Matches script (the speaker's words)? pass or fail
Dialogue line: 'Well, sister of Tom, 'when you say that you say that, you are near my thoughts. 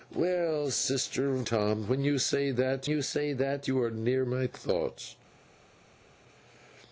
pass